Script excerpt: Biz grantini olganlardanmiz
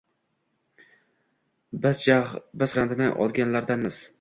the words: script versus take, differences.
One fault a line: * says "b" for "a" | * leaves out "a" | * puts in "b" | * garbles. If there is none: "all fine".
all fine